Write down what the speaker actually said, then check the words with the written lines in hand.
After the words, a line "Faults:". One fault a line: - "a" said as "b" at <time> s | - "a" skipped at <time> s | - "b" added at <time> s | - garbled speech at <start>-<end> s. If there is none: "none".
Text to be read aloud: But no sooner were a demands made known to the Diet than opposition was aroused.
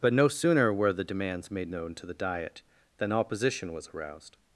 But no sooner were the demands made known to the Diet than opposition was aroused.
Faults:
- "a" said as "the" at 0.9 s